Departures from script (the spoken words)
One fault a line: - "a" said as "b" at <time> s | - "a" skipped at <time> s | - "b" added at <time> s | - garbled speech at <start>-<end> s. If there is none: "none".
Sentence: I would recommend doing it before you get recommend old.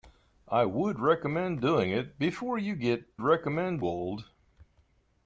none